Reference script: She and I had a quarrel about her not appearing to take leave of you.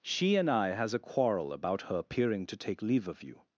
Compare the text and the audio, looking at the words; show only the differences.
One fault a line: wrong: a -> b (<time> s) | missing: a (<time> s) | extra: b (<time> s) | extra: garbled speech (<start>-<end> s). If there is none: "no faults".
wrong: had -> has (0.7 s)
missing: not (2.0 s)